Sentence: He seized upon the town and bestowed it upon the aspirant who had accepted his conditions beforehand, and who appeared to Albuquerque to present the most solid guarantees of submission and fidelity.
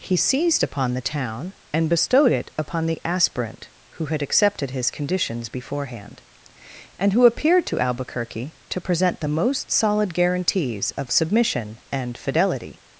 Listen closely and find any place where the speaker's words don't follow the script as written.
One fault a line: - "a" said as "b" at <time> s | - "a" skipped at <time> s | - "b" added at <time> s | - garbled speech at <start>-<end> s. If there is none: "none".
none